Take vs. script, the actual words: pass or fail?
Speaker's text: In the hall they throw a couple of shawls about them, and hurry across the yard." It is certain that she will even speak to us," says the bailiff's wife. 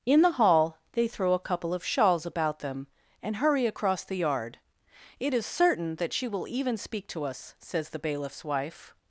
pass